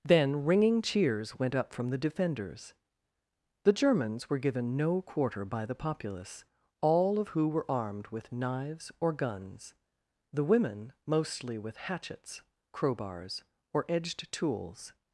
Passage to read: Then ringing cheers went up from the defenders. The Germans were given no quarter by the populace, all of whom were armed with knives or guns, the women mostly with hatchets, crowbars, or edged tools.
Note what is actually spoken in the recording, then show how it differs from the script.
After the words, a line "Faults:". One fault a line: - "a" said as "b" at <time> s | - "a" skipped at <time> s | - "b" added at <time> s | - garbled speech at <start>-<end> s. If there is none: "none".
Then ringing cheers went up from the defenders. The Germans were given no quarter by the populace, all of who were armed with knives or guns, the women mostly with hatchets, crowbars, or edged tools.
Faults:
- "whom" said as "who" at 7.3 s